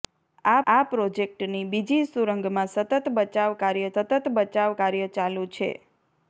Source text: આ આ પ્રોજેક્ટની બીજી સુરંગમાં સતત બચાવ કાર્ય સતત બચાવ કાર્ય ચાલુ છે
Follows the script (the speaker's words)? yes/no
yes